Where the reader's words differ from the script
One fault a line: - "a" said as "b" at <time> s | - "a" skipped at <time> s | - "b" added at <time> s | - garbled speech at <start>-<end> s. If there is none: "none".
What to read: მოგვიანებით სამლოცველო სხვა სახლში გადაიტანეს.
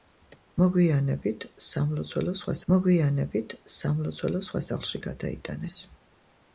- "მოგვიანებით სამლოცველო სხვა" added at 2.7 s